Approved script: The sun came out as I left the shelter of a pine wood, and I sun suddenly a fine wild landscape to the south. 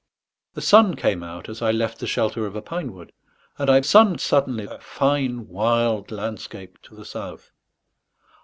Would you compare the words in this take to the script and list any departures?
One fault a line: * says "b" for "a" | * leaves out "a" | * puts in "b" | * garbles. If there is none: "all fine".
all fine